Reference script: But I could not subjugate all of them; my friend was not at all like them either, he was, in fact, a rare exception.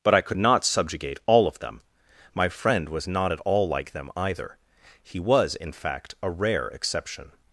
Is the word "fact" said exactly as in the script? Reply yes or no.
yes